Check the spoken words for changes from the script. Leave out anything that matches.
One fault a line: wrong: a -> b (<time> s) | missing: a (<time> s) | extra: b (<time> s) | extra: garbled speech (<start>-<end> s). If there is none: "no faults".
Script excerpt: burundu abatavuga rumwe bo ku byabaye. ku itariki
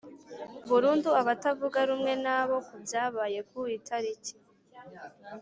extra: na (2.2 s)